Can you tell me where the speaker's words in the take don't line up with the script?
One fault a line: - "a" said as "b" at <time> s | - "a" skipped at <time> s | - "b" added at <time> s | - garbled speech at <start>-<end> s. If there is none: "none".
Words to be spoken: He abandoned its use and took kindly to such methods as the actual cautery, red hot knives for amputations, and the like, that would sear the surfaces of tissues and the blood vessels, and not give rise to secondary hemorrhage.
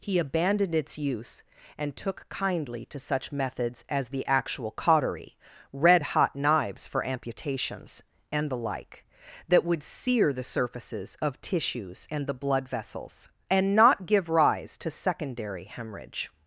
none